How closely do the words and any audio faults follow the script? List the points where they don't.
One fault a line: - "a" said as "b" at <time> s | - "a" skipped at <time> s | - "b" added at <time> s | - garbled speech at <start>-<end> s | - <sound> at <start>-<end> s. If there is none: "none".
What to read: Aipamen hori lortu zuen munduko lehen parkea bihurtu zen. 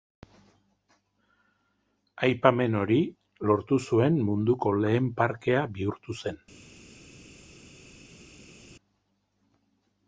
none